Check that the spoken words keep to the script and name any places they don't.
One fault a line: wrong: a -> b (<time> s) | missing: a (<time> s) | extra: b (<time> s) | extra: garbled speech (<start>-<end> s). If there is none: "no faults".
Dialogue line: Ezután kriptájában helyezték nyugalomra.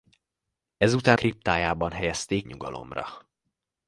no faults